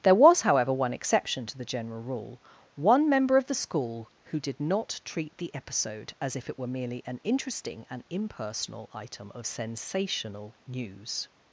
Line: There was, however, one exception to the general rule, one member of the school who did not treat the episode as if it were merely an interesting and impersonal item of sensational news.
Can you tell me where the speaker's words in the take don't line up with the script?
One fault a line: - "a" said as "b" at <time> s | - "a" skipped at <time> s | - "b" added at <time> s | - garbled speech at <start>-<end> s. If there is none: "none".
none